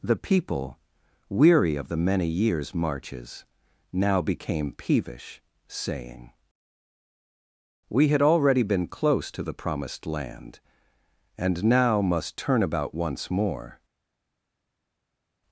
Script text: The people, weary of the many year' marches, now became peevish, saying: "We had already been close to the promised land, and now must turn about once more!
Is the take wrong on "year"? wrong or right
wrong